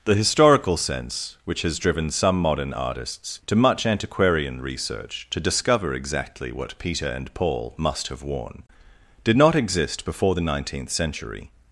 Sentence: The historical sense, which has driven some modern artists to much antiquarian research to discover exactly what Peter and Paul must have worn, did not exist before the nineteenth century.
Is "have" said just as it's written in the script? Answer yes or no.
yes